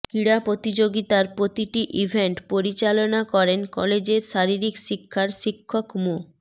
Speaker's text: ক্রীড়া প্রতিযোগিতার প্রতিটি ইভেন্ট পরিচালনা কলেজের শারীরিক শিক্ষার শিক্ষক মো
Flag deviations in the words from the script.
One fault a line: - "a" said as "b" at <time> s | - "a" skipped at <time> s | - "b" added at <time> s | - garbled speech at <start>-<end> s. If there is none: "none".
- "করেন" added at 3.3 s